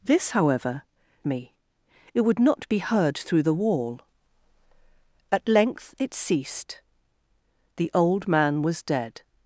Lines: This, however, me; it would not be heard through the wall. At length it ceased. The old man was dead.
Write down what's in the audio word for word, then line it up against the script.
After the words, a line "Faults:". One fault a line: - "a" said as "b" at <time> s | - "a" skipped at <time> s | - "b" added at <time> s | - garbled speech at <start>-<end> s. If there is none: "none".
This, however, me; it would not be heard through the wall. At length it ceased. The old man was dead.
Faults:
none